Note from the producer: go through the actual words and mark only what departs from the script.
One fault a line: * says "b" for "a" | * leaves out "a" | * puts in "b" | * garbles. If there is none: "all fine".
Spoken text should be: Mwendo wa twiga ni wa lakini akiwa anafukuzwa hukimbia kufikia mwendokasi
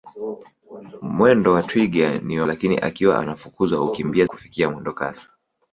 all fine